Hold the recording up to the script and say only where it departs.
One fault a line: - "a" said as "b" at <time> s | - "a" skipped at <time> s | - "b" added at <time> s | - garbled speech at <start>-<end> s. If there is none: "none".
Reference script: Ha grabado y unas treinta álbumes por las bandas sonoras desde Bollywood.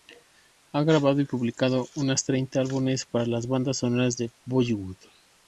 - "publicado" added at 1.2 s
- "por" said as "para" at 3.1 s
- "desde" said as "de" at 4.2 s